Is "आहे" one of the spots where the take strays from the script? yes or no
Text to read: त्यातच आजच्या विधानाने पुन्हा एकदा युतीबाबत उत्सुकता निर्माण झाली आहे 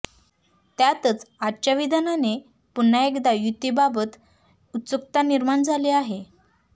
no